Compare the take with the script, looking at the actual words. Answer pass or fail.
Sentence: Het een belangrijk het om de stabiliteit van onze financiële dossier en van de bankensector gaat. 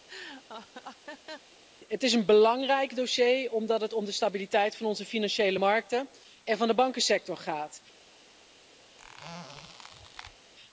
fail